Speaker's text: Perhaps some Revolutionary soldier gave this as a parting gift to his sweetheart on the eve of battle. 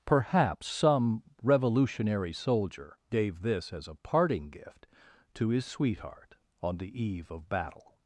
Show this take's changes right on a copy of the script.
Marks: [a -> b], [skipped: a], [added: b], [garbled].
Perhaps some Revolutionary soldier gave this as a parting gift to his sweetheart on the eve of battle.